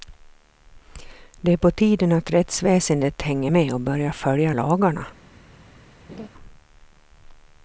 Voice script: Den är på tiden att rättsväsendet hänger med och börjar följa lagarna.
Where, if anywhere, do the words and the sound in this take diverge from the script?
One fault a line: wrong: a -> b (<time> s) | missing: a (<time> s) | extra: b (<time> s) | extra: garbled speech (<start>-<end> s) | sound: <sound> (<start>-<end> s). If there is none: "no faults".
wrong: Den -> Det (1.4 s)
sound: laugh (6.1-6.3 s)